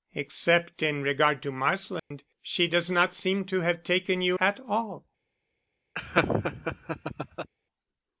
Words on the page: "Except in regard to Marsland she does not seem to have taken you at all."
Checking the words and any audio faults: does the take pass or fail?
fail